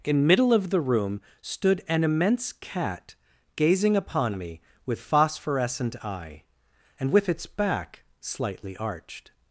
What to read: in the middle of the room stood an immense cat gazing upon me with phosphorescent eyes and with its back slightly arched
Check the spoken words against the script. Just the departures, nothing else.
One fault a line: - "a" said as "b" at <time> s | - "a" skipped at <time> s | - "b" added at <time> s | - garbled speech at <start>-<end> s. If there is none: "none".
- "the" skipped at 0.2 s
- "eyes" said as "eye" at 6.0 s